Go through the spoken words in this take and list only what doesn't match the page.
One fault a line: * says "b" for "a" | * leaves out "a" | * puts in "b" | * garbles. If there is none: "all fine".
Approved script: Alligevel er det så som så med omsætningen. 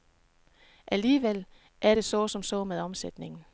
all fine